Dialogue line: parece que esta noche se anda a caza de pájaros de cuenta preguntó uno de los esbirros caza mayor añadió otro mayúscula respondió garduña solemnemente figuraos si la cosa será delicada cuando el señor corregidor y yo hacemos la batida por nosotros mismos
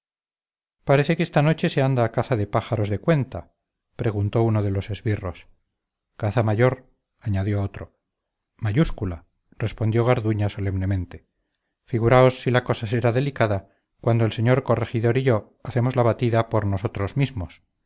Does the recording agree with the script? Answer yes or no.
yes